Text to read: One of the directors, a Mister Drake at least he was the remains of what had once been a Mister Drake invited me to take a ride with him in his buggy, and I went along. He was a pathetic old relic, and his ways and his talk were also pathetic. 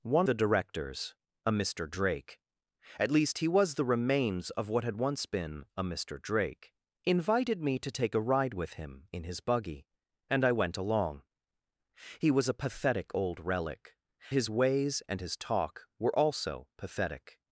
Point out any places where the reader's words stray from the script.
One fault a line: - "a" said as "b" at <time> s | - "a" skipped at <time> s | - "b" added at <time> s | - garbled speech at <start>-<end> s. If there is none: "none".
- "of" skipped at 0.3 s
- "and" skipped at 14.0 s